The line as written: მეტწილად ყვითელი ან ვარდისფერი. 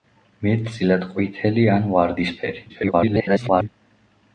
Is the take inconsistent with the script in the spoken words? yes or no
yes